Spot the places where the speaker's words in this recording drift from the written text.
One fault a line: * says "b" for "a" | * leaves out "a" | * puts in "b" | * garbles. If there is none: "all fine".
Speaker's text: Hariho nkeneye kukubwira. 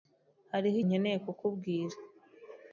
all fine